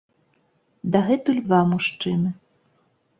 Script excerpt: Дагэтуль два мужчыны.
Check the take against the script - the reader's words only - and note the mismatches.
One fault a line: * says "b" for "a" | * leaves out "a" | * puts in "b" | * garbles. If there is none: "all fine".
all fine